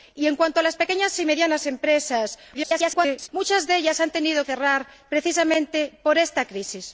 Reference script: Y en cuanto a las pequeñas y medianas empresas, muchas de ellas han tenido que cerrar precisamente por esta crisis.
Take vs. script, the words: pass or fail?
fail